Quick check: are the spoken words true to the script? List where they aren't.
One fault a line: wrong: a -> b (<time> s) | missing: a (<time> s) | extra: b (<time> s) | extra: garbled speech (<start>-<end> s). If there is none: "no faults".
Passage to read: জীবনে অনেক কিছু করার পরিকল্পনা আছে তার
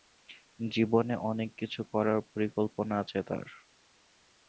no faults